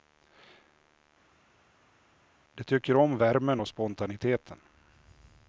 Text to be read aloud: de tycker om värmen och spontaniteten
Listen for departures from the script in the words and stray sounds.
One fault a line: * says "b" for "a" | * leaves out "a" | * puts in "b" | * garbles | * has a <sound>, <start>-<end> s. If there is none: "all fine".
all fine